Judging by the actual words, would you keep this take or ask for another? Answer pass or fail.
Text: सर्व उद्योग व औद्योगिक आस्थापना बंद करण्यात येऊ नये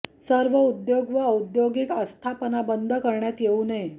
pass